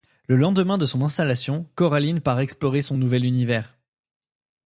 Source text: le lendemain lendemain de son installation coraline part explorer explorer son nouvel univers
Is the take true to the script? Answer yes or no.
no